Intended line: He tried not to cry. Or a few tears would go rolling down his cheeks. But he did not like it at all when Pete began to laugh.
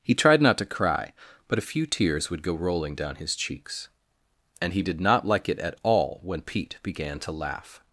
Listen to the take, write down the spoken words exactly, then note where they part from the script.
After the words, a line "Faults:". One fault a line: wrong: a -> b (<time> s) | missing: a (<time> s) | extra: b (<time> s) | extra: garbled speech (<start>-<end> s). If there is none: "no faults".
He tried not to cry. But a few tears would go rolling down his cheeks. And he did not like it at all when Pete began to laugh.
Faults:
wrong: Or -> But (1.5 s)
wrong: But -> And (4.6 s)